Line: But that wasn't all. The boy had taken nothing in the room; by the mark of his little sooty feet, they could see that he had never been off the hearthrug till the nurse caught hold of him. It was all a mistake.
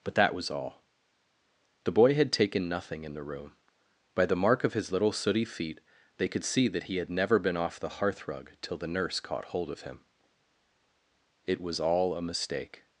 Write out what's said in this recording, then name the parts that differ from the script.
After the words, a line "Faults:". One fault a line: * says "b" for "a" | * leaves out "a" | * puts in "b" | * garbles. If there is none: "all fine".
But that was all. The boy had taken nothing in the room; by the mark of his little sooty feet, they could see that he had never been off the hearthrug till the nurse caught hold of him. It was all a mistake.
Faults:
* says "was" for "wasn't"